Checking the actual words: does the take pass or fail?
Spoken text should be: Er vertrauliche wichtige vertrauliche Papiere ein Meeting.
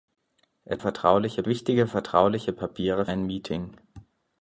pass